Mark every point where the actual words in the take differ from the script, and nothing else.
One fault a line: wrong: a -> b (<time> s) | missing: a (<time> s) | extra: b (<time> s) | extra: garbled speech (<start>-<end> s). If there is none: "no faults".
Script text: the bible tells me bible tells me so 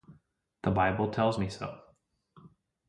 missing: bible tells me (1.5 s)